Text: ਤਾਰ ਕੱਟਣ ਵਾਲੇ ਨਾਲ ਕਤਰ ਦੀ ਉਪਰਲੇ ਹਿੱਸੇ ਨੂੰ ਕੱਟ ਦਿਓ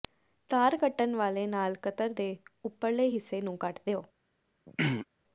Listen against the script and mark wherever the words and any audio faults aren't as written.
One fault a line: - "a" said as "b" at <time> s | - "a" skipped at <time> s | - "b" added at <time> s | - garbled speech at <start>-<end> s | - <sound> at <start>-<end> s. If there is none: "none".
- "ਦੀ" said as "ਦੇ" at 2.1 s
- throat clearing at 4.7-5.1 s